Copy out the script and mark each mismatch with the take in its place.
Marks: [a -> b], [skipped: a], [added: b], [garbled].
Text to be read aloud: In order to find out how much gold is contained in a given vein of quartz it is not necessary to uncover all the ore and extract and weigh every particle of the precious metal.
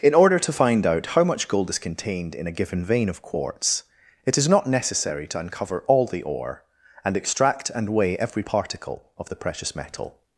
In order to find out how much gold is contained in a given vein of quartz it is not necessary to uncover all the ore and extract and weigh every particle of the precious metal.